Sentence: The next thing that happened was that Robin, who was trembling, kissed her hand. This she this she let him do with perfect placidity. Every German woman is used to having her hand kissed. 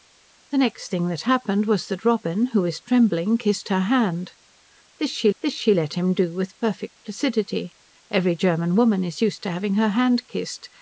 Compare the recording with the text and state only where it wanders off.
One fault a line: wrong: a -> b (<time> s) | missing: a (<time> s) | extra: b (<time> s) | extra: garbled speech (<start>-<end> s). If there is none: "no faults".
no faults